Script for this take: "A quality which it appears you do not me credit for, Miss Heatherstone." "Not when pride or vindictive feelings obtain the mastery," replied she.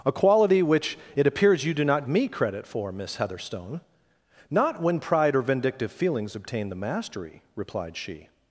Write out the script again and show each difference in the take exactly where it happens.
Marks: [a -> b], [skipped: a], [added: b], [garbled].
"A quality which it appears you do not me credit for, Miss Heatherstone." "Not when pride or vindictive feelings obtain the mastery," replied she.